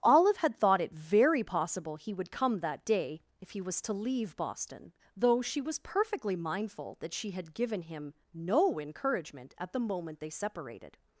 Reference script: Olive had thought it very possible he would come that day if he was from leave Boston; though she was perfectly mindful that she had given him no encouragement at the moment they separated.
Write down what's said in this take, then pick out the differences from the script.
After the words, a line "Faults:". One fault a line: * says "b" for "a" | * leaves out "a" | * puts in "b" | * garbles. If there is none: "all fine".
Olive had thought it very possible he would come that day if he was to leave Boston; though she was perfectly mindful that she had given him no encouragement at the moment they separated.
Faults:
* says "to" for "from"